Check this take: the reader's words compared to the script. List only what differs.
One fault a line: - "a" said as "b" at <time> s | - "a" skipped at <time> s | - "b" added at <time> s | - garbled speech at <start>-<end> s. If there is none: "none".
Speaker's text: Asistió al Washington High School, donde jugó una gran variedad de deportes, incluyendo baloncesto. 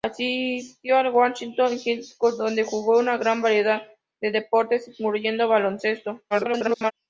- garbled speech at 6.3-6.9 s